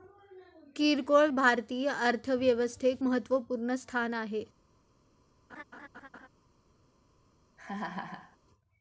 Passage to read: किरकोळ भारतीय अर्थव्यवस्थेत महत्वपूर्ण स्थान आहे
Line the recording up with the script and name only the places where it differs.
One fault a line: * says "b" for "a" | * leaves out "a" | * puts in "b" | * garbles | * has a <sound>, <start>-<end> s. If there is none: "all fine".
* has a laugh, 5.5-6.3 s
* has a laugh, 7.6-8.4 s